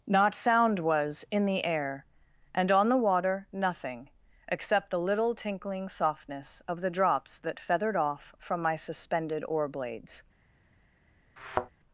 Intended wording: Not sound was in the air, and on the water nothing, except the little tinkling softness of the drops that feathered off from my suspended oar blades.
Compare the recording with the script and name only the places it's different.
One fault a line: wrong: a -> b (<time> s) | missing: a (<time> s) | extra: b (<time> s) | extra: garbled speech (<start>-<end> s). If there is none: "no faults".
no faults